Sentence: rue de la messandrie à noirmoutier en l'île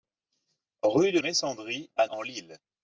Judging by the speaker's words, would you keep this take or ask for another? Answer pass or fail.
fail